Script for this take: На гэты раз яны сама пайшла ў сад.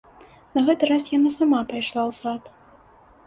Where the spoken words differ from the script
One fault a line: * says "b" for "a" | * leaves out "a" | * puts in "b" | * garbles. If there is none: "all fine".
* says "яна" for "яны"